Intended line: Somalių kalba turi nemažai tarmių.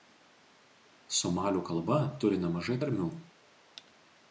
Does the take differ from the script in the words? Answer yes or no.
no